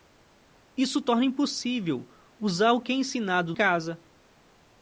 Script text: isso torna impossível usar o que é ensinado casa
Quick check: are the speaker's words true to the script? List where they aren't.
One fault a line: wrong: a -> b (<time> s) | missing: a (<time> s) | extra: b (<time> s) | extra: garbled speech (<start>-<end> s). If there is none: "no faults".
no faults